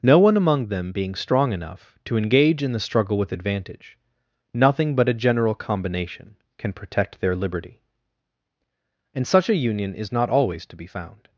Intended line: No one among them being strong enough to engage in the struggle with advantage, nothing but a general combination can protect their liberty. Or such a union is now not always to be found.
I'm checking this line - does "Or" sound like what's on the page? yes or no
no